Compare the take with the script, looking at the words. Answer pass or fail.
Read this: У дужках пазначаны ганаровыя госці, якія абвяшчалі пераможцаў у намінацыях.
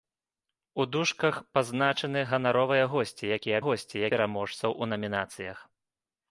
fail